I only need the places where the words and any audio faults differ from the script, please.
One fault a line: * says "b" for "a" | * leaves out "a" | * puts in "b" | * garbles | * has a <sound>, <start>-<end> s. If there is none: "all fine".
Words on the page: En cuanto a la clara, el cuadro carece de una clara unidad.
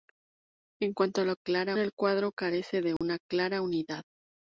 * has a dropout, 3.0-3.0 s